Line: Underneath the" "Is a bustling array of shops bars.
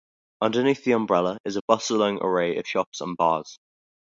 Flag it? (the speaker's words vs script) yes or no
yes